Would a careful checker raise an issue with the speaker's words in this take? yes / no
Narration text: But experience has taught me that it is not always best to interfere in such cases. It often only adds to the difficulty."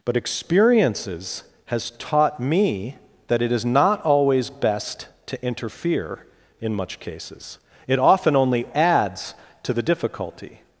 yes